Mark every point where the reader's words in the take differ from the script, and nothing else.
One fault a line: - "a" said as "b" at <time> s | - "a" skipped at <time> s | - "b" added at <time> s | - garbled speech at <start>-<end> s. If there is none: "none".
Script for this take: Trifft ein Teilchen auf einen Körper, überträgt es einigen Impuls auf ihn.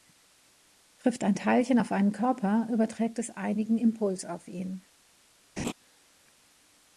none